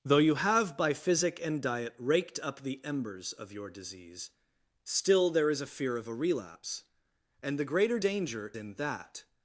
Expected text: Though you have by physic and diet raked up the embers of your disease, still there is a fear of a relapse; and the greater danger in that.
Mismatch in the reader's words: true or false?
false